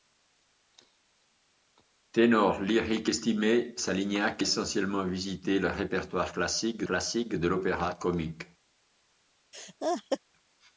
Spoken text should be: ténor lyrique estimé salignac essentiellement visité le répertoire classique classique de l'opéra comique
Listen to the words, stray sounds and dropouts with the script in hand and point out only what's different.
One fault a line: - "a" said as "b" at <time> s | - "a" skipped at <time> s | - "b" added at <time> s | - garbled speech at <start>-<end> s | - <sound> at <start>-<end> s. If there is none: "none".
- laugh at 9.5-10.2 s